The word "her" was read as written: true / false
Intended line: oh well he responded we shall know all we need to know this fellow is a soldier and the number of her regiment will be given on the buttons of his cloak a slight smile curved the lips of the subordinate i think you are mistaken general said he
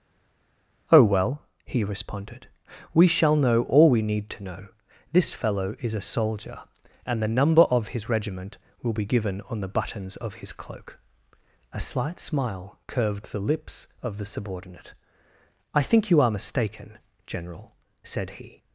false